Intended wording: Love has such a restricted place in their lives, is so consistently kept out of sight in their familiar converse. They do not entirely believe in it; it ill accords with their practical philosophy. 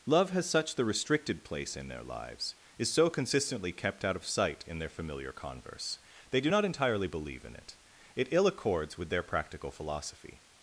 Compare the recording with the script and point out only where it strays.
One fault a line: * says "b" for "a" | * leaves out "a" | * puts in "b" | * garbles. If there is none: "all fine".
* says "the" for "a"